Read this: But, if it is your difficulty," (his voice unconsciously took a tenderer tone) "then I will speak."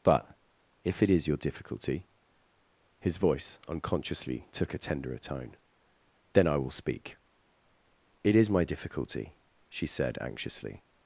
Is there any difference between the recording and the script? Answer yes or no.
yes